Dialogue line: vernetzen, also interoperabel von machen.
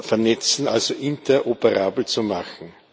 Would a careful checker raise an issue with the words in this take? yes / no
yes